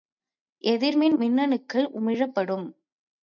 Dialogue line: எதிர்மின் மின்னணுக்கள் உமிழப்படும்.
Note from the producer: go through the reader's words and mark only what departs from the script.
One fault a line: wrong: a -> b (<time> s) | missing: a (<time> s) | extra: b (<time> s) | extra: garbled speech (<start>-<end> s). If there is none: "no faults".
no faults